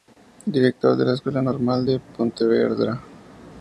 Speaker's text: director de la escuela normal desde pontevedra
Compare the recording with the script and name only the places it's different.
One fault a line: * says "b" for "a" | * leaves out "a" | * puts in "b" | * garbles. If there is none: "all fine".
* says "de" for "desde"